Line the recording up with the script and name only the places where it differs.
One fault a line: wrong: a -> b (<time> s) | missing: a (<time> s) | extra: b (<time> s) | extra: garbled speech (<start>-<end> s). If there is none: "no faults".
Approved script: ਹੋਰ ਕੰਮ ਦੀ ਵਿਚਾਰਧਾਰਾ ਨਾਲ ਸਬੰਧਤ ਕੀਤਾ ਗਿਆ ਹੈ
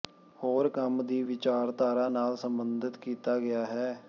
no faults